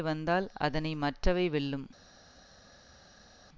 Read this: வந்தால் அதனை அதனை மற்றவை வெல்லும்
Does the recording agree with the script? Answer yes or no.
no